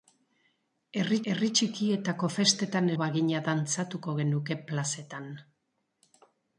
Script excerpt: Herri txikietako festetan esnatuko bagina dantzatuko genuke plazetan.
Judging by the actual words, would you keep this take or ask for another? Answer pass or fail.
fail